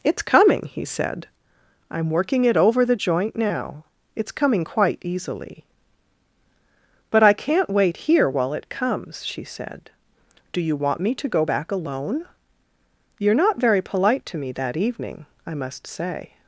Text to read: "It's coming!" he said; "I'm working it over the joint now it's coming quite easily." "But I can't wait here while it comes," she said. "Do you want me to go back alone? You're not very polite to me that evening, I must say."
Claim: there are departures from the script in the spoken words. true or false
false